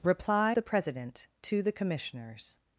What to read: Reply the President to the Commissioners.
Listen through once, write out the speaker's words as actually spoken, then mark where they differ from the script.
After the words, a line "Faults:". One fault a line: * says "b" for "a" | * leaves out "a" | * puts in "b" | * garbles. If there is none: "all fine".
Reply the President to the Commissioners.
Faults:
all fine